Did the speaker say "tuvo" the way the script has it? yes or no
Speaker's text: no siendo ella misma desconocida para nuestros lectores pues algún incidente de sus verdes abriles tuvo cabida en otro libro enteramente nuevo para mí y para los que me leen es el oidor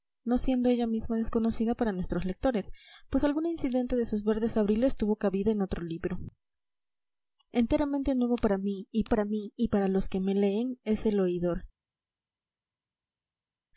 yes